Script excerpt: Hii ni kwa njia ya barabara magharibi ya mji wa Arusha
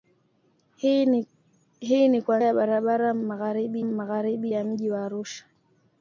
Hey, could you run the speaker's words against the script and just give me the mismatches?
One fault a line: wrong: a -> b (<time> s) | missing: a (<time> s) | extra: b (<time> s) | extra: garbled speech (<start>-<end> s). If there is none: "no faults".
missing: njia (2.4 s)
extra: magharibi (3.8 s)